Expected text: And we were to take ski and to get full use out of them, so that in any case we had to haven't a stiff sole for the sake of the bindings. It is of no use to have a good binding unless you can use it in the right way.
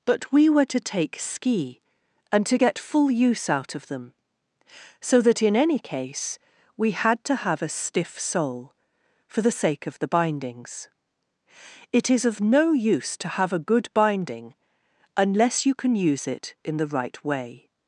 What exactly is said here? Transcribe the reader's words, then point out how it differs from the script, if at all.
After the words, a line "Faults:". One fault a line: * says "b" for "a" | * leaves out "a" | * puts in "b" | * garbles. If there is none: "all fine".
But we were to take ski and to get full use out of them, so that in any case we had to have a stiff sole for the sake of the bindings. It is of no use to have a good binding unless you can use it in the right way.
Faults:
* says "But" for "And"
* says "have" for "haven't"